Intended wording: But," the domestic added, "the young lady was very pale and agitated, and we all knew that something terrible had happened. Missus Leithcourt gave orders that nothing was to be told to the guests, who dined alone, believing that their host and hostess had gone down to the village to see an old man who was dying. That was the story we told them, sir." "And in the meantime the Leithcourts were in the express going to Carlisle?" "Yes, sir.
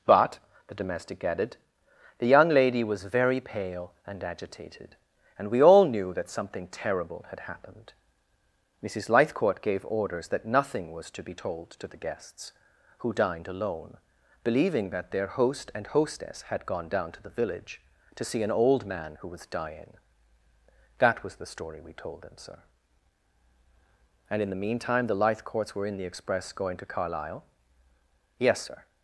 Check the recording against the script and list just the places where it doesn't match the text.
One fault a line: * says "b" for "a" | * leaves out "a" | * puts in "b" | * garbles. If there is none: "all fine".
all fine